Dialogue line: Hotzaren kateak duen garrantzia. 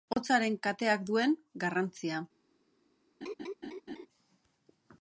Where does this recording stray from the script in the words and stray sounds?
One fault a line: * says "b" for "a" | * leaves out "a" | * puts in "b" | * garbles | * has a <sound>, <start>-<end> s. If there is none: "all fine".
* has a laugh, 3.2-4.1 s